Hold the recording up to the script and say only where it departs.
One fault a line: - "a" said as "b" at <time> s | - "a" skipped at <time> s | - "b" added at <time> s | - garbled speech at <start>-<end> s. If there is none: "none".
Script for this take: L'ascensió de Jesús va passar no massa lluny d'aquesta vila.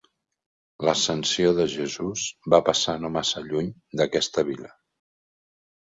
none